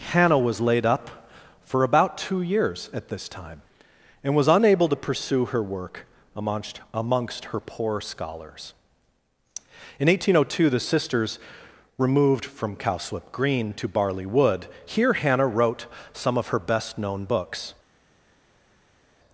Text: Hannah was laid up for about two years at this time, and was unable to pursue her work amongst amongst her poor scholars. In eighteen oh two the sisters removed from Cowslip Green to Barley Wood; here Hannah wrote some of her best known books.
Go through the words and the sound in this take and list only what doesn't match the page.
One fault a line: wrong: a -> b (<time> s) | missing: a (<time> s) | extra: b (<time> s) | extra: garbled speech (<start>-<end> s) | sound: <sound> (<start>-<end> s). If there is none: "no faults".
no faults